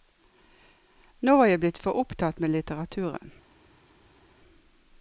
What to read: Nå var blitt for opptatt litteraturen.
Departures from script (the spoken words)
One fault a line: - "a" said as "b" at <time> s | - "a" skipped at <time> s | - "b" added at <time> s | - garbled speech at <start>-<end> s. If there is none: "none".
- "jeg" added at 1.5 s
- "med" added at 2.4 s